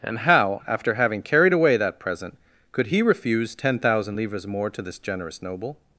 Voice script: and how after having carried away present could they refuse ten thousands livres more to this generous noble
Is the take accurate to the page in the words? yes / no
no